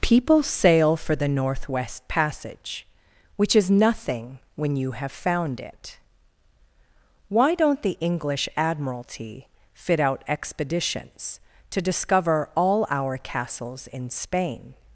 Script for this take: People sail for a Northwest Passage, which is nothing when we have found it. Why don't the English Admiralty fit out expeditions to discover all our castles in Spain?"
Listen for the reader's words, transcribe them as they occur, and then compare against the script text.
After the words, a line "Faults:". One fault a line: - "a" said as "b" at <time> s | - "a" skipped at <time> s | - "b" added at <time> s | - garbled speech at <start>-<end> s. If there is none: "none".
People sail for the Northwest Passage, which is nothing when you have found it. Why don't the English Admiralty fit out expeditions to discover all our castles in Spain?"
Faults:
- "a" said as "the" at 1.1 s
- "we" said as "you" at 4.8 s